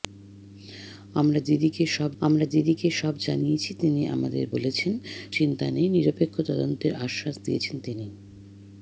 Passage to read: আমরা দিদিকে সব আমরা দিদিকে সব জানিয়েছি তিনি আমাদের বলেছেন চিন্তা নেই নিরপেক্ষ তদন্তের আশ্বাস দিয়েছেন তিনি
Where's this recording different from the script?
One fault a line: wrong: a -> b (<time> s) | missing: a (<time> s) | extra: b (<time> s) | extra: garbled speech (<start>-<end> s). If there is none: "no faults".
no faults